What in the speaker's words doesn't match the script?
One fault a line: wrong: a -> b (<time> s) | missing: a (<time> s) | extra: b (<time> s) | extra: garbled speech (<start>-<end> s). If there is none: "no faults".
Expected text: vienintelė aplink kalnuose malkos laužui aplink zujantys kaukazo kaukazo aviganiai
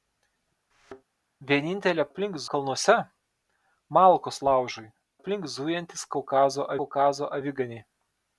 no faults